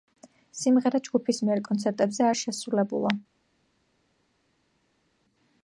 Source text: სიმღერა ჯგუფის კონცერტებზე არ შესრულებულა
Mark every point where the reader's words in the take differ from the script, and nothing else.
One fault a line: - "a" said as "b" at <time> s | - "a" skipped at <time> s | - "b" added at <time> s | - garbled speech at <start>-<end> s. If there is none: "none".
- "მიერ" added at 1.5 s